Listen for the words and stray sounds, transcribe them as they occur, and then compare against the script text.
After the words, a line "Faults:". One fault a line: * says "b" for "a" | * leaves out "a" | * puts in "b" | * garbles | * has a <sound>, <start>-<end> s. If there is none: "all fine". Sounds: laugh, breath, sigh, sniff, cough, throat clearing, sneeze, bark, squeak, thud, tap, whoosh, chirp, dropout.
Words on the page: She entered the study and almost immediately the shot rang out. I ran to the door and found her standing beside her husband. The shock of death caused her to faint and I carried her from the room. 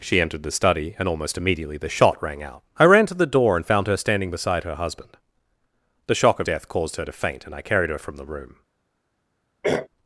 She entered the study and almost immediately the shot rang out. I ran to the door and found her standing beside her husband. The shock of death caused her to faint and I carried her from the room.
Faults:
* has a throat clearing, 9.6-9.9 s